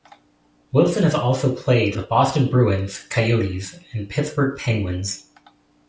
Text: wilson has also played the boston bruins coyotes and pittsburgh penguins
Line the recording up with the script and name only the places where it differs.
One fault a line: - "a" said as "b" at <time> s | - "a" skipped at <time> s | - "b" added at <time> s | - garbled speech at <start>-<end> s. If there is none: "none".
none